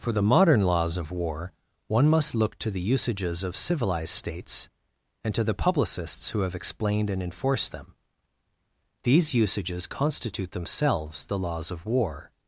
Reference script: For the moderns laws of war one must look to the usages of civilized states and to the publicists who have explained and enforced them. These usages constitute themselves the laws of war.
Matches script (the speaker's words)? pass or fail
fail